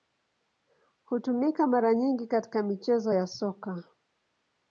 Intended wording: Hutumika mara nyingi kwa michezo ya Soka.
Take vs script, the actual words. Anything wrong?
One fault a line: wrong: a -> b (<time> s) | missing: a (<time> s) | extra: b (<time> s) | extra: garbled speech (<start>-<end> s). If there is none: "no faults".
wrong: kwa -> katika (2.3 s)